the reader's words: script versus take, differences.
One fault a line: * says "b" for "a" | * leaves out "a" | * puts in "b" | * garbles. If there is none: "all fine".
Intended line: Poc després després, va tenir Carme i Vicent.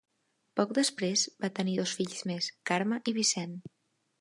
* leaves out "després"
* puts in "dos fills més"